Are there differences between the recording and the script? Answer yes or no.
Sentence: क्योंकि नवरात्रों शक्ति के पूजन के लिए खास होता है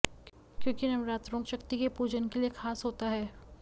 no